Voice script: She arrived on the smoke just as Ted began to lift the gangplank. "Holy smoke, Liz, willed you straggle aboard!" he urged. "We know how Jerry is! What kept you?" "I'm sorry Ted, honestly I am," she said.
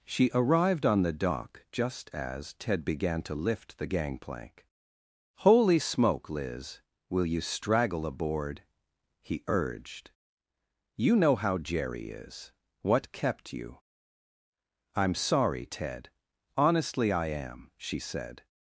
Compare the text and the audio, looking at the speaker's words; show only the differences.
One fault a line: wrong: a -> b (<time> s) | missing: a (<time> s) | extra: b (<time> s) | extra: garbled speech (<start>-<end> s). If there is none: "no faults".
wrong: smoke -> dock (1.1 s)
wrong: willed -> will (7.1 s)
wrong: We -> You (11.0 s)